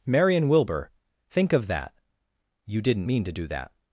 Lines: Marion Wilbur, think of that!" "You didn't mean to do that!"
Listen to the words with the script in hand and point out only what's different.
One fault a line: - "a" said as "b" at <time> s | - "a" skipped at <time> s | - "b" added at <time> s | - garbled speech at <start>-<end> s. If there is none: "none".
none